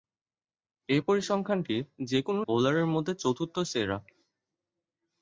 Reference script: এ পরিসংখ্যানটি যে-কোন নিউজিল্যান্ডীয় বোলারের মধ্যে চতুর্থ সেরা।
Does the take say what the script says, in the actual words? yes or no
no